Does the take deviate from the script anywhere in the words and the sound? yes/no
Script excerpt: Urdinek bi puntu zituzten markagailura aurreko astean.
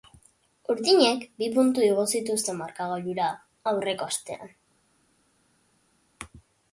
yes